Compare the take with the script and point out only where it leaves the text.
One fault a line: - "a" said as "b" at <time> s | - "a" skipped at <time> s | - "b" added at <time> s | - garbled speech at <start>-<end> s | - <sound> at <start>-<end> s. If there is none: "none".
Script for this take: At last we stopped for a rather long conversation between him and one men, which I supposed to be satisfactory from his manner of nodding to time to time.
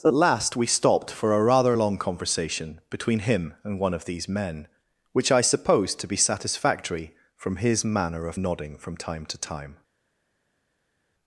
- "of these" added at 3.9 s
- "to" said as "from" at 8.8 s